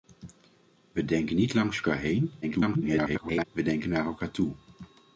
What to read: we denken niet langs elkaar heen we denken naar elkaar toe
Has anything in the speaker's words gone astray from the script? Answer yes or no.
yes